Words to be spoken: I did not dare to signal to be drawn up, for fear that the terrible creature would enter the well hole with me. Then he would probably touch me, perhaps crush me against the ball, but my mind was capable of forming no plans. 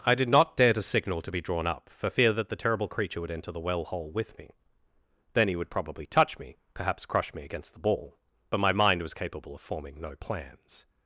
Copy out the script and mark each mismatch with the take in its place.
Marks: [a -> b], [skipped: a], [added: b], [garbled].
I did not dare to signal to be drawn up, for fear that the terrible creature would enter the well hole with me. Then he would probably touch me, perhaps crush me against the ball, but my mind was capable of forming no plans.